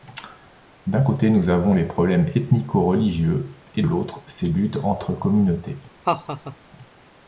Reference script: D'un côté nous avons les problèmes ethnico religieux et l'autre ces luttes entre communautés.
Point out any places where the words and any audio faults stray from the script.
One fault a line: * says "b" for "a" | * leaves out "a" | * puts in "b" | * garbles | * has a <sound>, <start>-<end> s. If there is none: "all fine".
* has a laugh, 6.0-6.6 s